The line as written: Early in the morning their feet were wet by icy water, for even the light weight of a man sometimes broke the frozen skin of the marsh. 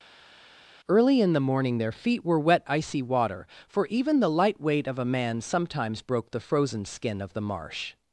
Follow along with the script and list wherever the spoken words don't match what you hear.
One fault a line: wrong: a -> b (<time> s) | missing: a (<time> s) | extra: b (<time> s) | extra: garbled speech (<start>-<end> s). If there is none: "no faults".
missing: by (2.7 s)